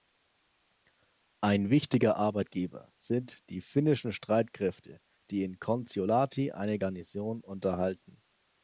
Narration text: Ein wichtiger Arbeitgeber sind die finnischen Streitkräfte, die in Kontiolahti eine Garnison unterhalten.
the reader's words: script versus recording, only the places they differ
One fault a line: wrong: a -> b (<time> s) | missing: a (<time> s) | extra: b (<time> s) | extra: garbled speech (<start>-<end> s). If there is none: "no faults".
no faults